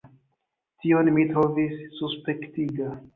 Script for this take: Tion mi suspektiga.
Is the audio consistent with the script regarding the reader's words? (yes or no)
no